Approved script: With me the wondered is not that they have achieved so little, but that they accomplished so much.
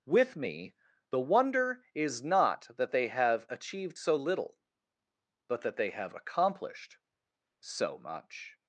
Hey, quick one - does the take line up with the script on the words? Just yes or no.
no